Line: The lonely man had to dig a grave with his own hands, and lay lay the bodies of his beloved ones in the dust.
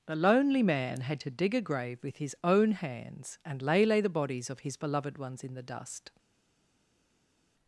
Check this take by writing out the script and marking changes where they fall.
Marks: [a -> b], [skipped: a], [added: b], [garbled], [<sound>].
The lonely man had to dig a grave with his own hands, and lay lay the bodies of his beloved ones in the dust.